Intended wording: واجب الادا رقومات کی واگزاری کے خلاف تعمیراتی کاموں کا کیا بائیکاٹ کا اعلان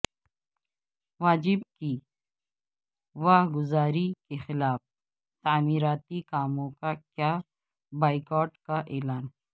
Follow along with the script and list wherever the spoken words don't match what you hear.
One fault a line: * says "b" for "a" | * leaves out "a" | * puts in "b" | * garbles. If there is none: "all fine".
* leaves out "الادا رقومات"